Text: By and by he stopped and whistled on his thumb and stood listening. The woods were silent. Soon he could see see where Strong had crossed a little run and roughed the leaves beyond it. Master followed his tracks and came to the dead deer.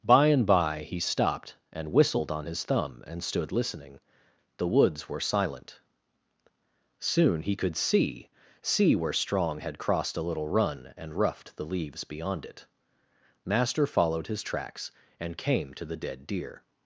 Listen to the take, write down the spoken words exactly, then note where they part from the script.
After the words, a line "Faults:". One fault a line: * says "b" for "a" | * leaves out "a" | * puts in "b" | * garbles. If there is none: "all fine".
By and by he stopped and whistled on his thumb and stood listening. The woods were silent. Soon he could see see where Strong had crossed a little run and roughed the leaves beyond it. Master followed his tracks and came to the dead deer.
Faults:
all fine